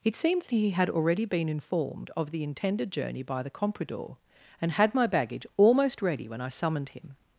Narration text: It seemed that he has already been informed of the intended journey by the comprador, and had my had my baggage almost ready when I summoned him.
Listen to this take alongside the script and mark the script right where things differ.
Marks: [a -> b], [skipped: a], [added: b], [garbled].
It seemed that he [has -> had] already been informed of the intended journey by the comprador, and had my [skipped: had my] baggage almost ready when I summoned him.